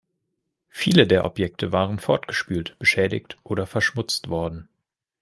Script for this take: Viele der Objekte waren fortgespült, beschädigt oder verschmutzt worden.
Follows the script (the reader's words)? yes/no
yes